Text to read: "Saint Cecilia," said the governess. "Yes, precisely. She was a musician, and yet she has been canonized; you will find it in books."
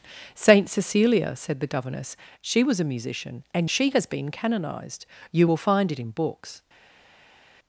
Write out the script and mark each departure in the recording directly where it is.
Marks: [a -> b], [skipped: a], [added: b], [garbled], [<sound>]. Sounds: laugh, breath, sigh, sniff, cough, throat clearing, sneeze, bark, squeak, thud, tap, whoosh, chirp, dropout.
"Saint Cecilia," said the governess. [skipped: "Yes, precisely.] She was a musician, and [skipped: yet] she has been canonized; you will find it in books."